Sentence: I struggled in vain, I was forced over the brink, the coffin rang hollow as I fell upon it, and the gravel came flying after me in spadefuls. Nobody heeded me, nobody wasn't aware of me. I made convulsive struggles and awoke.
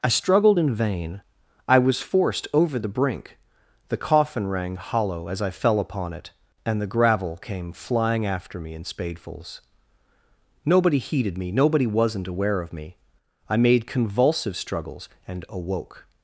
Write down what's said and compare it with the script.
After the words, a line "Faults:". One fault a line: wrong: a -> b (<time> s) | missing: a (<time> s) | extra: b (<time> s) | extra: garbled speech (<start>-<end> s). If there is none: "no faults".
I struggled in vain, I was forced over the brink, the coffin rang hollow as I fell upon it, and the gravel came flying after me in spadefuls. Nobody heeded me, nobody wasn't aware of me. I made convulsive struggles and awoke.
Faults:
no faults